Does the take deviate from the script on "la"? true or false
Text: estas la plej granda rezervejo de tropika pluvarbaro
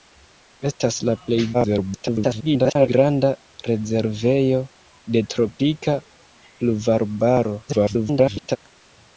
false